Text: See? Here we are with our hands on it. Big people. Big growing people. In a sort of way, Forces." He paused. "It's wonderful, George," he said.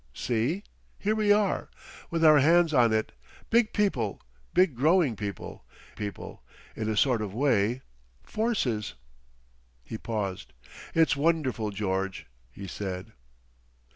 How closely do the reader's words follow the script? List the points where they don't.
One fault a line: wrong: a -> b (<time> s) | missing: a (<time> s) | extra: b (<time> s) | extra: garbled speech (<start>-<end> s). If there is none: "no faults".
extra: people (5.9 s)